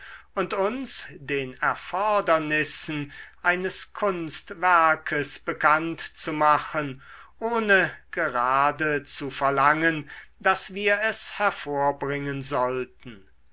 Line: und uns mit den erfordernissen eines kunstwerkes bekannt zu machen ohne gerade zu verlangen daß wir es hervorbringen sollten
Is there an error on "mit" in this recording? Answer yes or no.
yes